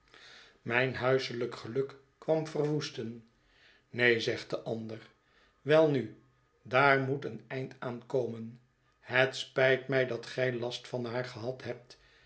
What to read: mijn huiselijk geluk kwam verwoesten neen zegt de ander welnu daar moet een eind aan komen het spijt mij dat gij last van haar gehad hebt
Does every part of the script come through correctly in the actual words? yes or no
yes